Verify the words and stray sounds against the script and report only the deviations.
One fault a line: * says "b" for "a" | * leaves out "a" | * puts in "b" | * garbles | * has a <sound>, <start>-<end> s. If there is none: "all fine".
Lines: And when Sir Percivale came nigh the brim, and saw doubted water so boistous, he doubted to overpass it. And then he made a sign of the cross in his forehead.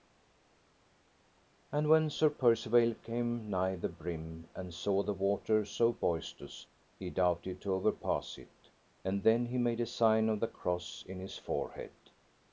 * says "the" for "doubted"